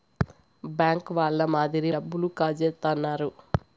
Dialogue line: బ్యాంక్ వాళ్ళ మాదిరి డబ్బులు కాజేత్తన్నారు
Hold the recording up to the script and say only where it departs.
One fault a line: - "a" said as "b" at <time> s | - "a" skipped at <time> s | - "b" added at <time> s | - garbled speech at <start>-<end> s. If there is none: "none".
none